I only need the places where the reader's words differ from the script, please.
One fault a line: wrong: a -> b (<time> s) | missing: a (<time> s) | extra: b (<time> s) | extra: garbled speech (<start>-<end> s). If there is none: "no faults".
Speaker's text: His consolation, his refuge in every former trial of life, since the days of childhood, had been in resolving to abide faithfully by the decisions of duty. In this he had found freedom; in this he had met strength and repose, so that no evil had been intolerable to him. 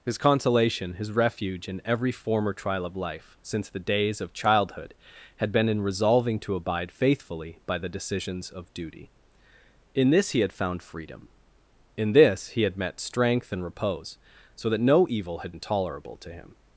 missing: been (15.5 s)